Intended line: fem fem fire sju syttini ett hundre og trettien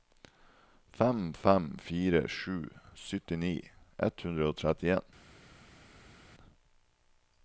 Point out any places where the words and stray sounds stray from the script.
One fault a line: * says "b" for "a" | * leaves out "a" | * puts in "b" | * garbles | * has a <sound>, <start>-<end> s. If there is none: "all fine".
all fine